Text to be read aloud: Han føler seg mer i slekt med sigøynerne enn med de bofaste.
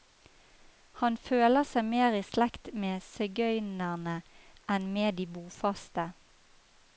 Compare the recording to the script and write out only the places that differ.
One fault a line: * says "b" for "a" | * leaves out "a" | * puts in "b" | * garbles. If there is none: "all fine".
all fine